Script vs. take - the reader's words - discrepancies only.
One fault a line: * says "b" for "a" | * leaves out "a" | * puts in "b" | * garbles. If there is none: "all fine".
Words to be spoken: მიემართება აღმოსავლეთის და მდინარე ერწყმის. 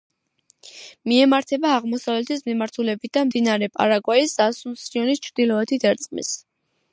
* puts in "მიმართულებით"
* puts in "პარაგვაის ასუნსიონის ჩრდილოეთით"